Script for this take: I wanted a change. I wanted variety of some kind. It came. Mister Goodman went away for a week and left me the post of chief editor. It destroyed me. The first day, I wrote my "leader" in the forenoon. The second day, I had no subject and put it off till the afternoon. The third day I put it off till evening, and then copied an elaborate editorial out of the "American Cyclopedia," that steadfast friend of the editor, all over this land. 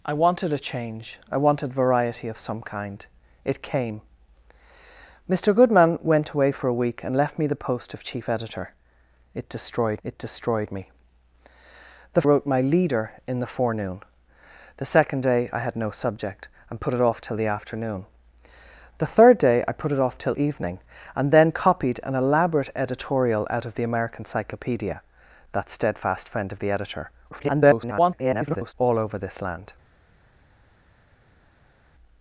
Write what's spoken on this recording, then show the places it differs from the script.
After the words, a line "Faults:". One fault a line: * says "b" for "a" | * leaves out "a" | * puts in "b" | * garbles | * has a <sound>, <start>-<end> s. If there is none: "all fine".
I wanted a change. I wanted variety of some kind. It came. Mister Goodman went away for a week and left me the post of chief editor. It destroyed it destroyed me. The wrote my "leader" in the forenoon. The second day, I had no subject and put it off till the afternoon. The third day I put it off till evening, and then copied an elaborate editorial out of the "American Cyclopedia," that steadfast friend of the editor, [garbled] all over this land.
Faults:
* puts in "it destroyed"
* leaves out "first day I"
* garbles